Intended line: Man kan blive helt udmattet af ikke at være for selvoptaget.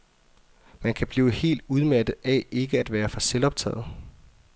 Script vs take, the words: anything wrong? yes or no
no